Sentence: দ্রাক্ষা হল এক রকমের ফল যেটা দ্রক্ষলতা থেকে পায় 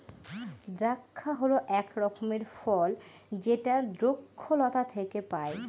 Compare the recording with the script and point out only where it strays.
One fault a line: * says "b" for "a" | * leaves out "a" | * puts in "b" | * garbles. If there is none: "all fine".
all fine